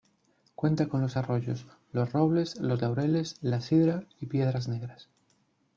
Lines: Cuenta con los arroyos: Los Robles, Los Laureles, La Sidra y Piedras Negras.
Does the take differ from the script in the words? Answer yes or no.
no